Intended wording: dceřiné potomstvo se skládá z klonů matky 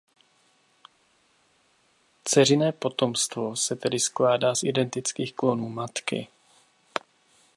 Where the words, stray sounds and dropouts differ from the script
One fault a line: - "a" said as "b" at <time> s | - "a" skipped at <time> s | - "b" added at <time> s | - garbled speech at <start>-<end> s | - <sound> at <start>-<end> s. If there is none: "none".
- "tedy" added at 3.8 s
- "identických" added at 4.6 s